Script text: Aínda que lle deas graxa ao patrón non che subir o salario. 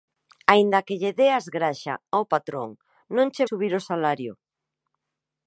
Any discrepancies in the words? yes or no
no